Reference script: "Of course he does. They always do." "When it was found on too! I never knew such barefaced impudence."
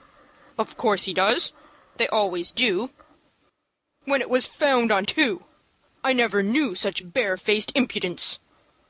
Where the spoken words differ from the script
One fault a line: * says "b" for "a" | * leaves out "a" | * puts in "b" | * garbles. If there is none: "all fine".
all fine